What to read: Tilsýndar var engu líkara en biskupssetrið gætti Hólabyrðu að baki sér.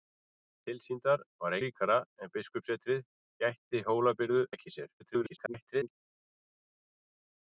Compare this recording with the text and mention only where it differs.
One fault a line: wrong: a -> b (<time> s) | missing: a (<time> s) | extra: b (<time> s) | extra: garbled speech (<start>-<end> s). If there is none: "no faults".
missing: engu (1.6 s)
missing: að (4.4 s)
extra: garbled speech (5.0-6.0 s)